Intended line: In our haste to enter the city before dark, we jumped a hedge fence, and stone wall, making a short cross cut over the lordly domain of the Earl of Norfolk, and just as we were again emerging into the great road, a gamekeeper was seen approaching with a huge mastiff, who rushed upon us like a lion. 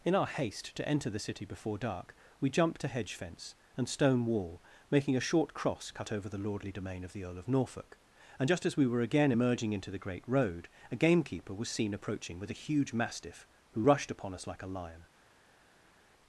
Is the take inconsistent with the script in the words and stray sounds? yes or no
no